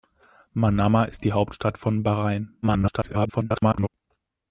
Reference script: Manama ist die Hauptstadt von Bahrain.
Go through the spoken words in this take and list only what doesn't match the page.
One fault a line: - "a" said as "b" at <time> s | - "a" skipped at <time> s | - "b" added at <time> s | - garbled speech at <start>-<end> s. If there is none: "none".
- garbled speech at 2.6-3.9 s